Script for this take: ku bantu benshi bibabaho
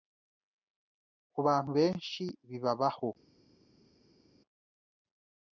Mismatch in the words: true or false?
false